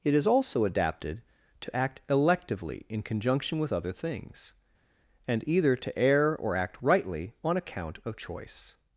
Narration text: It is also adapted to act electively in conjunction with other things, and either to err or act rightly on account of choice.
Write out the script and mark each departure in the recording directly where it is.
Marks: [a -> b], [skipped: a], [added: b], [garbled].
It is also adapted to act electively in conjunction with other things, and either to err or act rightly on account of choice.